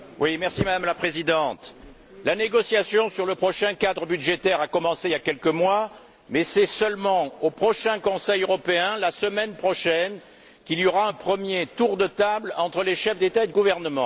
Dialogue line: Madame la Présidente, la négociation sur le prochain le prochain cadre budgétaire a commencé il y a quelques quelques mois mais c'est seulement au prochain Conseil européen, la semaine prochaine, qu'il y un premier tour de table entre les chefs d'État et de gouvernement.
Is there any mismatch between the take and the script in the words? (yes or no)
yes